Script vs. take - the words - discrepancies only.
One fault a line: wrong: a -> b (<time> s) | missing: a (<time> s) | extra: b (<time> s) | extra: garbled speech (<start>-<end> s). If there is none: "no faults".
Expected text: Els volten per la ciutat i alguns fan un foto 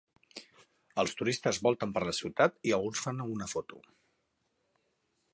extra: turistes (1.2 s)
wrong: un -> una (3.3 s)